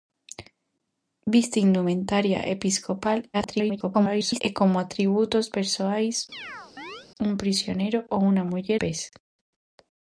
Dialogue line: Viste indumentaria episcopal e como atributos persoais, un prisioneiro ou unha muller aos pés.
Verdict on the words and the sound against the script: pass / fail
fail